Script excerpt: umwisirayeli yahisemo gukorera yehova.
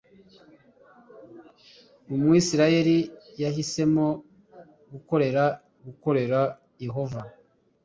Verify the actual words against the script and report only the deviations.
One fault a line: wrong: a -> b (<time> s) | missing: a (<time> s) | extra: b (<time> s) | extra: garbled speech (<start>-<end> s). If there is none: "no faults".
extra: gukorera (5.8 s)